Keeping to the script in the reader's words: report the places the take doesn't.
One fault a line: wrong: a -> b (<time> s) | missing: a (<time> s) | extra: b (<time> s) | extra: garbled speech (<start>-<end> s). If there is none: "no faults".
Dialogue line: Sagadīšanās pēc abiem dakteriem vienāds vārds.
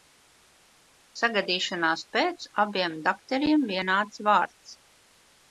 no faults